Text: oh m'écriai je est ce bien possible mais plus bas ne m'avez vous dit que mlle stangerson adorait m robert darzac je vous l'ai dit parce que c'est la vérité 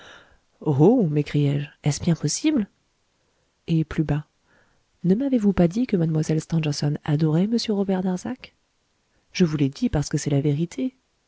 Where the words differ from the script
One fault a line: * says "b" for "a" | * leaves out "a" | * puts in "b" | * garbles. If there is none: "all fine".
* says "et" for "mais"
* puts in "pas"